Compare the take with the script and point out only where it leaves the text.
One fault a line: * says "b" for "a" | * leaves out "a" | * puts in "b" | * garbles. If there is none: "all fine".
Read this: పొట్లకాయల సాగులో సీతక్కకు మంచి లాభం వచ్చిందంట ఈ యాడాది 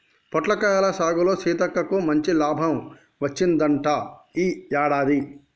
all fine